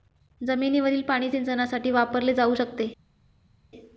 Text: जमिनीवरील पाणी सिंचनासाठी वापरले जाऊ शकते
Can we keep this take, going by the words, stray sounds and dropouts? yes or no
yes